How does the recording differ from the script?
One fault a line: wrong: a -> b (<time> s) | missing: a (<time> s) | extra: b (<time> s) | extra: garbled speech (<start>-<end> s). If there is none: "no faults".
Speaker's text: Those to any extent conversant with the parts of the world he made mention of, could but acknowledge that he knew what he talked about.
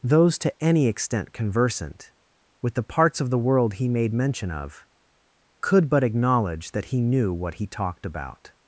no faults